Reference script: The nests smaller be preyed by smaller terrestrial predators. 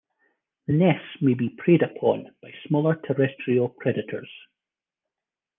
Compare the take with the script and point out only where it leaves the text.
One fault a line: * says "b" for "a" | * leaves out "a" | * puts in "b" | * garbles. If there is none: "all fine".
* says "may" for "smaller"
* puts in "upon"